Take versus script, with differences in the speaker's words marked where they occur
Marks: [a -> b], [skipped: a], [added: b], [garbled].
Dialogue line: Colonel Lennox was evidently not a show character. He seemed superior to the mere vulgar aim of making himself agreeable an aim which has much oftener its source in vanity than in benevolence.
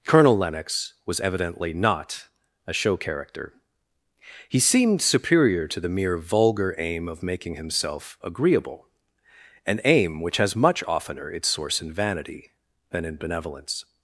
Colonel Lennox was evidently not a show character. He seemed superior to the mere vulgar aim of making himself agreeable an aim which has much oftener its source in vanity than in benevolence.